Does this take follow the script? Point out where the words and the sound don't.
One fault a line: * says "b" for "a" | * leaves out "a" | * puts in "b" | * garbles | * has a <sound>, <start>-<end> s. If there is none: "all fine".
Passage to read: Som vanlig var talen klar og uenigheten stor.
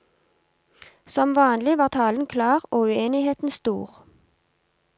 all fine